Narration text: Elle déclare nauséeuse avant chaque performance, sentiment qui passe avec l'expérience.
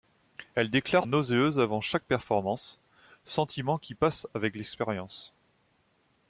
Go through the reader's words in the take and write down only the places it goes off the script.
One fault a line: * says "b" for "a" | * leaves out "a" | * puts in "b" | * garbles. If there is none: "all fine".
all fine